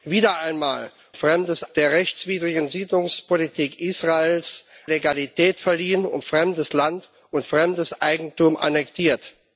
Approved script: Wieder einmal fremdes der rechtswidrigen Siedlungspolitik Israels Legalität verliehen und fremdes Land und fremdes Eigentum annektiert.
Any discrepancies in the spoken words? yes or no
no